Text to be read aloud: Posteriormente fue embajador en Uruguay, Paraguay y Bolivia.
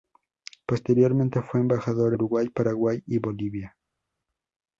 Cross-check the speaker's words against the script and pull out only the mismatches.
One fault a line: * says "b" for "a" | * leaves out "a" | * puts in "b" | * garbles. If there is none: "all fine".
* leaves out "en"